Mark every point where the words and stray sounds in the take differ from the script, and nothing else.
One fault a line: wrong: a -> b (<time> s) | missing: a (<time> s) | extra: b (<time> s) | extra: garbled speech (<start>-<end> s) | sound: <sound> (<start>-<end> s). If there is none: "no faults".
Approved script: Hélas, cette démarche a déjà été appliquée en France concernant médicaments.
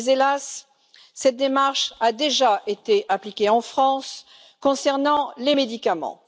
extra: les (5.4 s)